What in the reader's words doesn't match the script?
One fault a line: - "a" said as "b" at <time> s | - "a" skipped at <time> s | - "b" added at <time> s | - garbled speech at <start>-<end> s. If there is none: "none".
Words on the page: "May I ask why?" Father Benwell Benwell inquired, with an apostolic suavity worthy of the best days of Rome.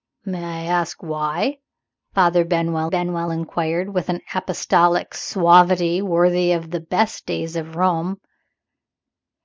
none